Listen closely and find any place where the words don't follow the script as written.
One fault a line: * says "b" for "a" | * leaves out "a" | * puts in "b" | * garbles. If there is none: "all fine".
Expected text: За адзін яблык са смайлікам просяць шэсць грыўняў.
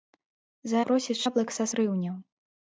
* says "просяць" for "адзін"
* leaves out "смайлікам просяць шэсць"